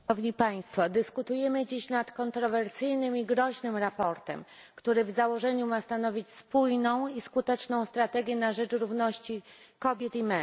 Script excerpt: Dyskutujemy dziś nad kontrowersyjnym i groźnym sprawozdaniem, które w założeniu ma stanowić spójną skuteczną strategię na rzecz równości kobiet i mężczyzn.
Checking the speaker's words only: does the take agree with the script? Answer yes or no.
no